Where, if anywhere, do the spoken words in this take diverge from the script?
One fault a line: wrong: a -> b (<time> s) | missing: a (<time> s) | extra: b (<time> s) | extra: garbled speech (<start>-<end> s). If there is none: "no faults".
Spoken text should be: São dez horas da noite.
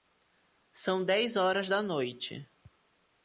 no faults